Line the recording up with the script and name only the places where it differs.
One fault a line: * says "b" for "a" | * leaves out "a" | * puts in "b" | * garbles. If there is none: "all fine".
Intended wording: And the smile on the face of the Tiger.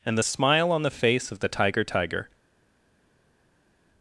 * puts in "Tiger"